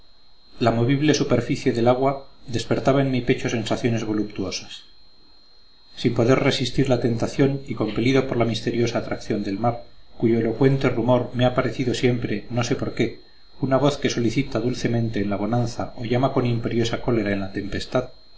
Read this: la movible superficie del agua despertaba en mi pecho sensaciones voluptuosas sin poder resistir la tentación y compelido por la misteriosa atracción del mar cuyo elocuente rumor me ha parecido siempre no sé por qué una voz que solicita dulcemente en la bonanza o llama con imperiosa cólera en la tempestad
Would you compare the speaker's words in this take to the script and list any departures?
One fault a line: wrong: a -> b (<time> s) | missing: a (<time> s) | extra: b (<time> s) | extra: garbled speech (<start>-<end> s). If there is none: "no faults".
no faults